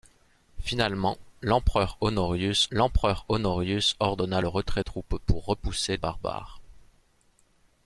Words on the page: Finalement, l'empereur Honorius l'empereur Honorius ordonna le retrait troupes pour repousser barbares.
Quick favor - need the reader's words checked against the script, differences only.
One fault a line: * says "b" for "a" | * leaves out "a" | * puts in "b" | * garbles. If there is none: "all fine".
all fine